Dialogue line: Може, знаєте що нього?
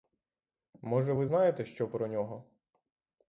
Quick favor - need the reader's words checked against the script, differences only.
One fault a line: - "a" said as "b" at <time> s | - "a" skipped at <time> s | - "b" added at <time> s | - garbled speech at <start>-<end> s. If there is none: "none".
- "ви" added at 1.1 s
- "про" added at 1.9 s